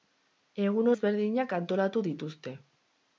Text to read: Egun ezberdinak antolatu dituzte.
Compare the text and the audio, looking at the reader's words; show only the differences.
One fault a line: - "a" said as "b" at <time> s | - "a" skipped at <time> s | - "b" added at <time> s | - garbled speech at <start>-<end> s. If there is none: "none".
none